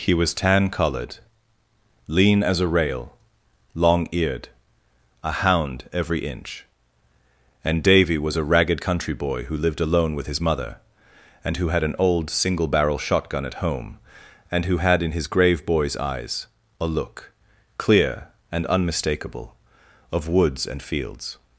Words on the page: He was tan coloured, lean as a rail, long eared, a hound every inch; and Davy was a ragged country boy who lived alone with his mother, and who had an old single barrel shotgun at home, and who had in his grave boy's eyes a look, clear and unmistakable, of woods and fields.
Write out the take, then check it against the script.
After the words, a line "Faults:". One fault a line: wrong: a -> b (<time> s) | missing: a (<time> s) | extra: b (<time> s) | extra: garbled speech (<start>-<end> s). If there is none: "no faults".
He was tan coloured, lean as a rail, long eared, a hound every inch; and Davy was a ragged country boy who lived alone with his mother, and who had an old single barrel shotgun at home, and who had in his grave boy's eyes a look, clear and unmistakable, of woods and fields.
Faults:
no faults